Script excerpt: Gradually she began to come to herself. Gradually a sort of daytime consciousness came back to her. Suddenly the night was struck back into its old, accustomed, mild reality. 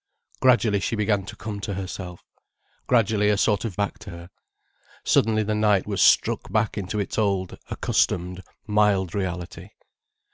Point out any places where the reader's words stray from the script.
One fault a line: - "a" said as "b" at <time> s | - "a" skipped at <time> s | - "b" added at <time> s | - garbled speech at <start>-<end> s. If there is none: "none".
- "daytime consciousness came" skipped at 3.8 s